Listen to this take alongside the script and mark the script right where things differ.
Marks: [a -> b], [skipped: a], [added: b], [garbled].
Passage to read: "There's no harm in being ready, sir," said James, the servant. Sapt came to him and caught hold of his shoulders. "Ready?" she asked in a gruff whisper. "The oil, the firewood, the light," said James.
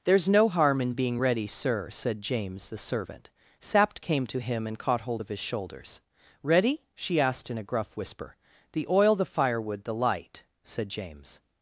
"There's no harm in being ready, sir," said James, the servant. Sapt came to him and caught hold of his shoulders. "Ready?" she asked in a gruff whisper. "The oil, the firewood, the light," said James.